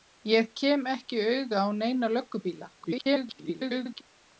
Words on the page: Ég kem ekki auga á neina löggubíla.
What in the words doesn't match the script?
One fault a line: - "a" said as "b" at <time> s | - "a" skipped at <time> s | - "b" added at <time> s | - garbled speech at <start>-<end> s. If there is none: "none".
- garbled speech at 2.8-4.0 s